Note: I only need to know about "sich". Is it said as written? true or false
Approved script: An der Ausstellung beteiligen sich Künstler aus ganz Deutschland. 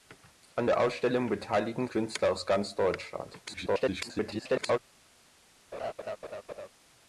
false